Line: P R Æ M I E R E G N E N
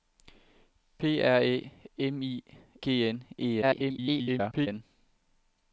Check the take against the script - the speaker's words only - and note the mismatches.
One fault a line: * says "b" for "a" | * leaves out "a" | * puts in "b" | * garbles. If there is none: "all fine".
* leaves out "E R E"
* garbles